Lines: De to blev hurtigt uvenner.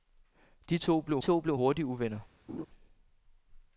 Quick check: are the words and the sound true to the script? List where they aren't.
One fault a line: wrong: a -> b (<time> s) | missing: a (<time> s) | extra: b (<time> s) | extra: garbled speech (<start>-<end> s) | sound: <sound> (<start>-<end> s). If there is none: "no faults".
extra: to blev (1.2 s)
sound: laugh (2.5-2.7 s)